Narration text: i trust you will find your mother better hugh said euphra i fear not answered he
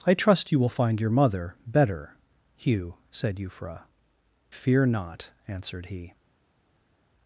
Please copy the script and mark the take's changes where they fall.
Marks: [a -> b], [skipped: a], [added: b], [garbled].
i trust you will find your mother better hugh said euphra [skipped: i] fear not answered he